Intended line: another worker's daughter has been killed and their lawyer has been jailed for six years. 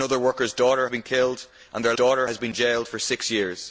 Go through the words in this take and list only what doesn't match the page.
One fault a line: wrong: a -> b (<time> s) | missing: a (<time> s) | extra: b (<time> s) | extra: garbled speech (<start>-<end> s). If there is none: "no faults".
missing: has (0.9 s)
wrong: lawyer -> daughter (1.9 s)